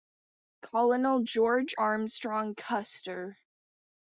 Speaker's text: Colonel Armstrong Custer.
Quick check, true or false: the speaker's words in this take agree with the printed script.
false